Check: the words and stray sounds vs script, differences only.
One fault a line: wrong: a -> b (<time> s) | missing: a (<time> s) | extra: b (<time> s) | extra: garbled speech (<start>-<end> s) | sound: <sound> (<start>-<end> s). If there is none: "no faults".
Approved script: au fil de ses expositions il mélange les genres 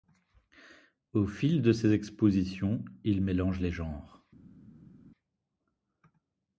no faults